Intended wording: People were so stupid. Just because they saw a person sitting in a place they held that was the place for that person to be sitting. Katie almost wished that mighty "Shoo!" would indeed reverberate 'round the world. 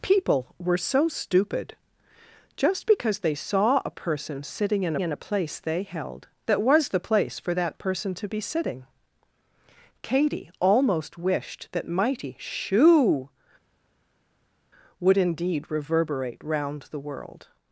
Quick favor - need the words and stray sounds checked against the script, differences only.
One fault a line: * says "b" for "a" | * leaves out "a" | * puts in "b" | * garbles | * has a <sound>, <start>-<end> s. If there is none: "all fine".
* puts in "in"